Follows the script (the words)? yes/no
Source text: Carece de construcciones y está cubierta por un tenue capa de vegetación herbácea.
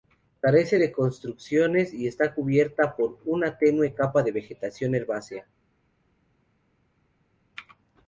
no